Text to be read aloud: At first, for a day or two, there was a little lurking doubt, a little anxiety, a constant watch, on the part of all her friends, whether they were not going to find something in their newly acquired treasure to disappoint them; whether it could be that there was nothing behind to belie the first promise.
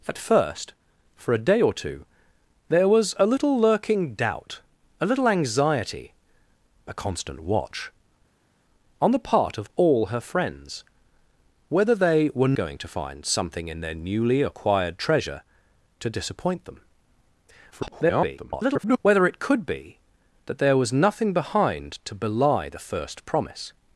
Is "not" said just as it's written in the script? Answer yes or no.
no